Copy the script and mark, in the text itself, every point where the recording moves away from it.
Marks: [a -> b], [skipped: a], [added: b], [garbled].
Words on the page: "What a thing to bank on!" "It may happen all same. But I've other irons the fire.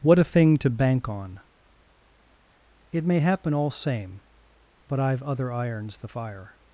"What a thing to bank on!" "It may happen all same. But I've other irons the fire.